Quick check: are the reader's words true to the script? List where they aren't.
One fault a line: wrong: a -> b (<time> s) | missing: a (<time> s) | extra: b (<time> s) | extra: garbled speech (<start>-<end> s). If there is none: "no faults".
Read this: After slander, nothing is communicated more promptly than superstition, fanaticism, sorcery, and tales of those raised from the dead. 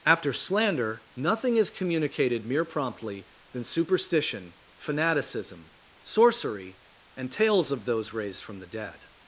wrong: more -> mere (2.4 s)